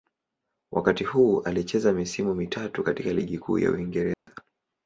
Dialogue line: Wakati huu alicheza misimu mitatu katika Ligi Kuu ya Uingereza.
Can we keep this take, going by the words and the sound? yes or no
no